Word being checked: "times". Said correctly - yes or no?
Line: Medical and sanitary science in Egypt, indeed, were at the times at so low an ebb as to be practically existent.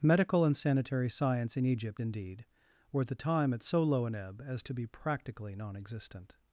no